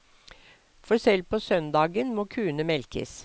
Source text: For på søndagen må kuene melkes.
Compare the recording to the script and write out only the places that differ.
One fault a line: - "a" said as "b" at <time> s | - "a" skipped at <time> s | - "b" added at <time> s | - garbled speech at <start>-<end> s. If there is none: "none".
- "selv" added at 1.0 s